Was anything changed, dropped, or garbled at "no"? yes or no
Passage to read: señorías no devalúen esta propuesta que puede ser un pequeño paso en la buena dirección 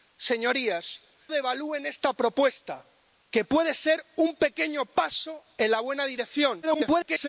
yes